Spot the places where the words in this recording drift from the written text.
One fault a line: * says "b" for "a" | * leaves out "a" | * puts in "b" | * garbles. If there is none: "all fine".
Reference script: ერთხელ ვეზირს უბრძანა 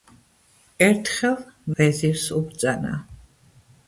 all fine